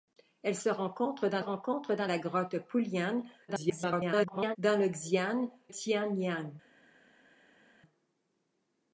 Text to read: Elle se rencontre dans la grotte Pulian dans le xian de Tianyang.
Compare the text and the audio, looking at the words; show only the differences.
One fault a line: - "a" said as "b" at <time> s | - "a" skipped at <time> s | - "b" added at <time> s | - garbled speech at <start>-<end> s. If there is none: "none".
- "rencontre dans" added at 1.4 s
- garbled speech at 3.5-4.6 s
- "de" skipped at 5.5 s